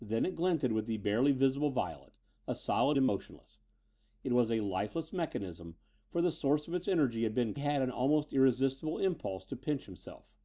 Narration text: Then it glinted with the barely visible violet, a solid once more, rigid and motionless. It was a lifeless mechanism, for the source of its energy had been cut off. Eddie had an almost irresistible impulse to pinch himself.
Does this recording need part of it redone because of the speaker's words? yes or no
yes